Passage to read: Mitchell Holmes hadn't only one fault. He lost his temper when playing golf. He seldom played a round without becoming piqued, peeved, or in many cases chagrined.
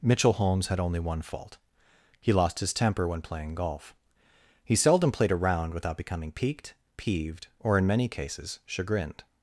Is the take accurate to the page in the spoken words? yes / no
no